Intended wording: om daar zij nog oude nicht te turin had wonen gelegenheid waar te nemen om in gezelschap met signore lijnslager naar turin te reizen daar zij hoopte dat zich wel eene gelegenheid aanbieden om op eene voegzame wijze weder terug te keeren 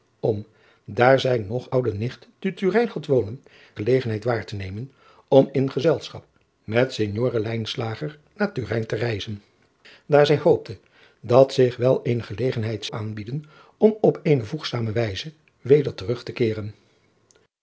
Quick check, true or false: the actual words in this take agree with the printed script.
true